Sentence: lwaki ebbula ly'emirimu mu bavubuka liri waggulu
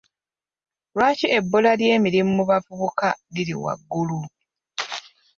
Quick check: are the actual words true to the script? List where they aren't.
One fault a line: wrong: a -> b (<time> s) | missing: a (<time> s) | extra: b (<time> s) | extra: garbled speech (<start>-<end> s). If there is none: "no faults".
no faults